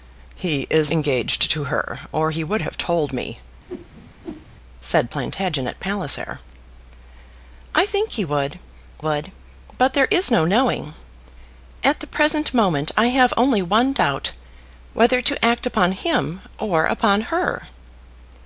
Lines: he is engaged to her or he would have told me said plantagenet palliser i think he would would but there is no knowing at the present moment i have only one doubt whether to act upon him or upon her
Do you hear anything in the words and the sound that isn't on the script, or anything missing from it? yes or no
yes